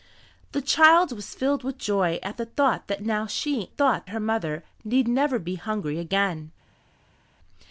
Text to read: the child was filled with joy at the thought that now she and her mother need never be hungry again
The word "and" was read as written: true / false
false